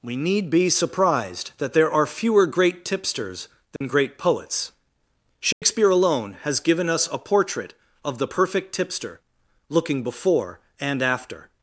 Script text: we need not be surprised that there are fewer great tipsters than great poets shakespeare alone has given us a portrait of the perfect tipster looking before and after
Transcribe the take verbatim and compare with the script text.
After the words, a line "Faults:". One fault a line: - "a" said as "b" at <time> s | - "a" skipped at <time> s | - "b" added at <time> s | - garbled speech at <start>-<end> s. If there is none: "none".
we need be surprised that there are fewer great tipsters than great poets shakespeare alone has given us a portrait of the perfect tipster looking before and after
Faults:
- "not" skipped at 0.5 s